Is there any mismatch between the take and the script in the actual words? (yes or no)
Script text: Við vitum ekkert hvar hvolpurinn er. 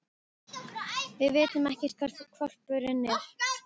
no